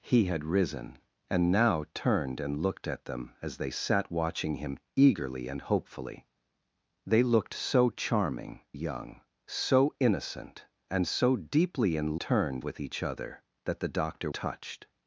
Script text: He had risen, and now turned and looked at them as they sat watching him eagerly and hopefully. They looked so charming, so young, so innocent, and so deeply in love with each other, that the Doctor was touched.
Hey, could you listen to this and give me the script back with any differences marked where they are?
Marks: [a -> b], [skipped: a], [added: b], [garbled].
He had risen, and now turned and looked at them as they sat watching him eagerly and hopefully. They looked so charming, [skipped: so] young, so innocent, and so deeply in [love -> turned] with each other, that the Doctor [skipped: was] touched.